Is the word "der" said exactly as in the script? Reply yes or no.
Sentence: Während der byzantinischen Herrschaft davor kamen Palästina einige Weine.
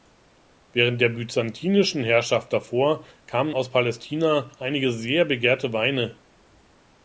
yes